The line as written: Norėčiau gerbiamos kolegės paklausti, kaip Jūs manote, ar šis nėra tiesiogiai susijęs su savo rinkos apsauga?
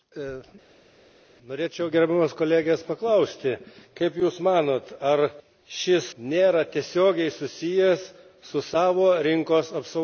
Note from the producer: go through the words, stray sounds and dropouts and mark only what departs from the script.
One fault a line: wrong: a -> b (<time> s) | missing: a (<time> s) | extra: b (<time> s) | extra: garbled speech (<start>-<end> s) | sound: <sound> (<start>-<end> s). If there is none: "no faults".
no faults